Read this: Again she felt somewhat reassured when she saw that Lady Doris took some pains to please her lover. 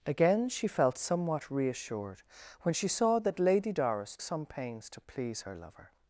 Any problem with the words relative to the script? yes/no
yes